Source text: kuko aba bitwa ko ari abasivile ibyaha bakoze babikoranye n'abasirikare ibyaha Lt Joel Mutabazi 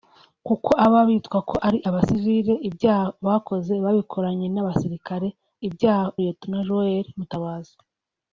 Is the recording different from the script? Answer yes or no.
no